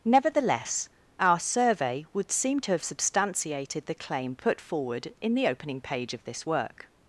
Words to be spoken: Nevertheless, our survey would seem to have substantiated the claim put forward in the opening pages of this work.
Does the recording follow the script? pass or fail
fail